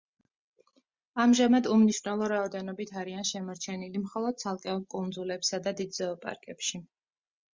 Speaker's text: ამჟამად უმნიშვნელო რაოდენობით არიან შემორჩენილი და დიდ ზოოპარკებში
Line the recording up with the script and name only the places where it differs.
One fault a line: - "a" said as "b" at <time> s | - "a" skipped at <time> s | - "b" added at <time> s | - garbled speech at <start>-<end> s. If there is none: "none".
- "მხოლოდ ცალკეულ კუნძულებსა" added at 4.0 s